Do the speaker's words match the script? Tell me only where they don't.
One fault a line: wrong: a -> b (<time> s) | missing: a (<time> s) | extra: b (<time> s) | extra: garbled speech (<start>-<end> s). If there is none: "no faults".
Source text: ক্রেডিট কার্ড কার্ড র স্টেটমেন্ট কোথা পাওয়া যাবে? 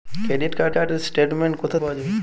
no faults